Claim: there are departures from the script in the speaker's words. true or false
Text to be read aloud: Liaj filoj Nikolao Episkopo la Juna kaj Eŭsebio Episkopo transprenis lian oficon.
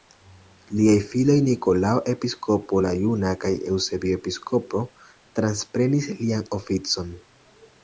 false